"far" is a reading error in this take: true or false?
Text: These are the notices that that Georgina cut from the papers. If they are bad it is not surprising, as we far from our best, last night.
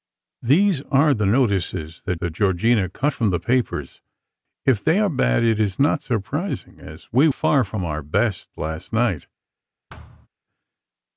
false